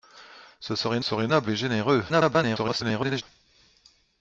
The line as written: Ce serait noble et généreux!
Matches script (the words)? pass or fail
fail